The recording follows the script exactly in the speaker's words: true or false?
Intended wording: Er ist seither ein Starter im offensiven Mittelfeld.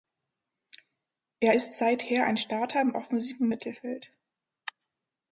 true